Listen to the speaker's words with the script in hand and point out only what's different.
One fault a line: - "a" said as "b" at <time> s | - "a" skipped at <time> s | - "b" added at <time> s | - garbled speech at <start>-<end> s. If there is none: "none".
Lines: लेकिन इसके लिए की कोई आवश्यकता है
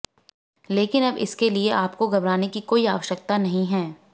- "अब" added at 1.0 s
- "आपको घबराने" added at 1.7 s
- "नहीं" added at 3.4 s